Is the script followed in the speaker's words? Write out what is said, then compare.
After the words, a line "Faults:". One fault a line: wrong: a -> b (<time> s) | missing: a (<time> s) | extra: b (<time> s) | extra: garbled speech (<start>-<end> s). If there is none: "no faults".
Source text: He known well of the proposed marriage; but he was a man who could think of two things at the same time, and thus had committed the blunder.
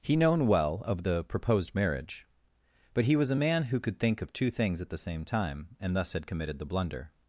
He known well of the proposed marriage; but he was a man who could think of two things at the same time, and thus had committed the blunder.
Faults:
no faults